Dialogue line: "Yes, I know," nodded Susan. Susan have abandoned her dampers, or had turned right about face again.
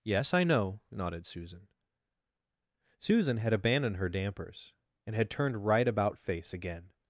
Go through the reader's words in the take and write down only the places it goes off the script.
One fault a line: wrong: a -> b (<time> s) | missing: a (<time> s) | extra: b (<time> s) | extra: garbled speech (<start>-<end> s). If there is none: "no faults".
wrong: have -> had (3.4 s)
wrong: or -> and (5.0 s)